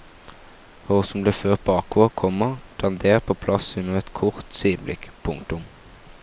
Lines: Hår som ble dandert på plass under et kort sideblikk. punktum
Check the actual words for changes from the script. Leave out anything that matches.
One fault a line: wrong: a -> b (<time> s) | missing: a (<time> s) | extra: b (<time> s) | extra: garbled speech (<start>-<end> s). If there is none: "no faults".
extra: ført bakover komma (1.4 s)